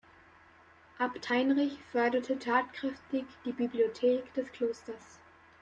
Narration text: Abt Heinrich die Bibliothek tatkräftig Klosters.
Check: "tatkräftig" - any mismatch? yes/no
yes